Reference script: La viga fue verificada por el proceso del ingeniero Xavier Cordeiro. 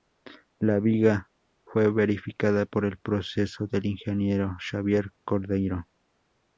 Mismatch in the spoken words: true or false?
false